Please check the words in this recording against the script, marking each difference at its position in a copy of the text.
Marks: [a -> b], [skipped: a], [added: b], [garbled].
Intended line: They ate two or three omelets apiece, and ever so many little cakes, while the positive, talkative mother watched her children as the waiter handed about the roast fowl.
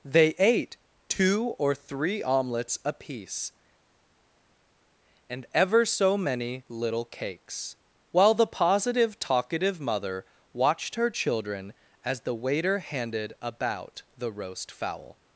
They ate two or three omelets apiece, and ever so many little cakes, while the positive, talkative mother watched her children as the waiter handed about the roast fowl.